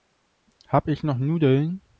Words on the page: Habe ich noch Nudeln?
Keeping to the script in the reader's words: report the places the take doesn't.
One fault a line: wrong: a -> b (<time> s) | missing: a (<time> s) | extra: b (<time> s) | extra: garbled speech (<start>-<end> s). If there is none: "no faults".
no faults